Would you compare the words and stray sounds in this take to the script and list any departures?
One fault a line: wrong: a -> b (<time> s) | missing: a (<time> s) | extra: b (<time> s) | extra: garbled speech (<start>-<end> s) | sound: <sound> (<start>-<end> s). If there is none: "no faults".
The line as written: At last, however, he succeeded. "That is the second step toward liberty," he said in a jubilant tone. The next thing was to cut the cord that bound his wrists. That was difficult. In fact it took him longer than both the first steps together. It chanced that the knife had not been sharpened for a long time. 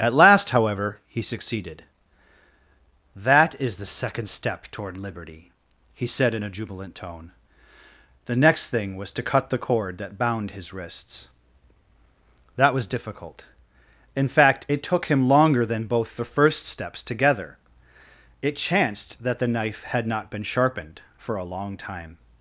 no faults